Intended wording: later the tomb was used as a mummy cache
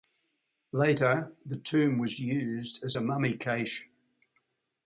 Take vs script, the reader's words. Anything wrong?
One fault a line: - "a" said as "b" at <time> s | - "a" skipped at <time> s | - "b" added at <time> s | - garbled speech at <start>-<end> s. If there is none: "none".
none